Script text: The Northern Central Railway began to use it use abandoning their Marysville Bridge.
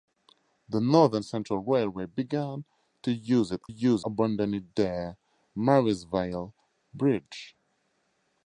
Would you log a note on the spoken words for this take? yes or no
no